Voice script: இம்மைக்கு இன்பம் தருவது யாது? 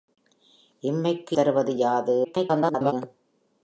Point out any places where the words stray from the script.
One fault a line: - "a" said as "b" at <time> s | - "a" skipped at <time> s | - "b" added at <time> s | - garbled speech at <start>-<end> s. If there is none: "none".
- "இன்பம்" skipped at 1.4 s
- garbled speech at 2.2-2.9 s